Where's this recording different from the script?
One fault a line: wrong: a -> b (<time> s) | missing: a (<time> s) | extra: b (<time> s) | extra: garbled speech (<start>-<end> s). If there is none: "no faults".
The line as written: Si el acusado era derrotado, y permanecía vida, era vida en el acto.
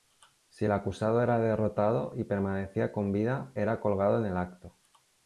extra: con (2.9 s)
wrong: vida -> colgado (3.8 s)